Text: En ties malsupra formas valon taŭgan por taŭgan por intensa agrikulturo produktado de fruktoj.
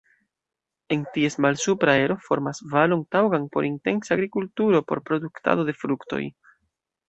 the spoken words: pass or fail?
fail